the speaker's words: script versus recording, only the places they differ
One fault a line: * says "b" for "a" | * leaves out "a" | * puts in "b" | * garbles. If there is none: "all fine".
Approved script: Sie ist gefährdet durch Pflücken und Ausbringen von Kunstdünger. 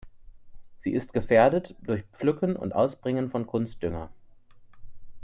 all fine